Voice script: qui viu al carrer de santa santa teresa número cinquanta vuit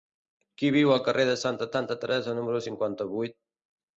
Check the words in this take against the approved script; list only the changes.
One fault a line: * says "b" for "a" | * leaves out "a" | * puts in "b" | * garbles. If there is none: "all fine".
all fine